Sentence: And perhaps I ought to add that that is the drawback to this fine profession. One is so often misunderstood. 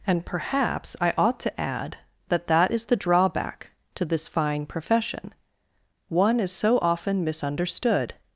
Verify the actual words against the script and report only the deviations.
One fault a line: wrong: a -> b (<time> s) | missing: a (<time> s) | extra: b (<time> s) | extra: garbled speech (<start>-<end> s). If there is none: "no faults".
no faults